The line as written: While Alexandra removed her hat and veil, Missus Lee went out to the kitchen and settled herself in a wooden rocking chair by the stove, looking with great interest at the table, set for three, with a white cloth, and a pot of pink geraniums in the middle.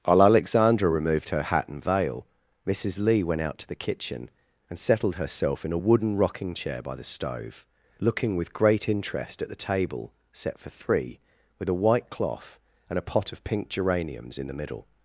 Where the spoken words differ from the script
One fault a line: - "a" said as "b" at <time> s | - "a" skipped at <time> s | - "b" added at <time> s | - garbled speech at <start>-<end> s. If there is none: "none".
none